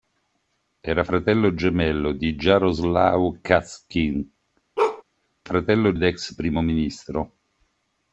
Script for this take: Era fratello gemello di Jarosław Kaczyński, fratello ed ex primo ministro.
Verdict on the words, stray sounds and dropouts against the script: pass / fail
fail